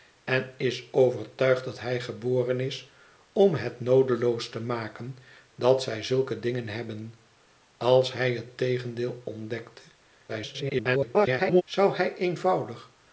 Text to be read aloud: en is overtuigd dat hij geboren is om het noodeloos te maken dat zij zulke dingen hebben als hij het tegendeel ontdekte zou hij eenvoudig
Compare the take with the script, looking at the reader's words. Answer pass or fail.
fail